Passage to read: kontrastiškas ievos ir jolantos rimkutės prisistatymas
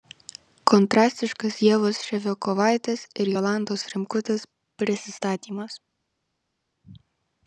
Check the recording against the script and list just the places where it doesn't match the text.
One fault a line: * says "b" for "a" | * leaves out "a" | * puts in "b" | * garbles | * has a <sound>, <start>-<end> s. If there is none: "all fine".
* puts in "ševiakovaitės"